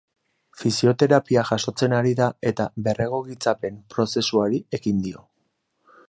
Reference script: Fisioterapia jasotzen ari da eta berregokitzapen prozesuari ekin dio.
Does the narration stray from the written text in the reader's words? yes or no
no